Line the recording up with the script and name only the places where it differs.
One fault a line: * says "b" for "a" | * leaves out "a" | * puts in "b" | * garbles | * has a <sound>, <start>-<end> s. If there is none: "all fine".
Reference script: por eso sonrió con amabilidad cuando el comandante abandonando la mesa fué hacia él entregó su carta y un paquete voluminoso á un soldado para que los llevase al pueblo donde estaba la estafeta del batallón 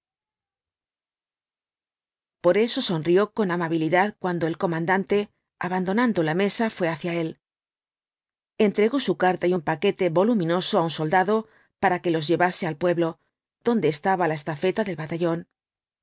all fine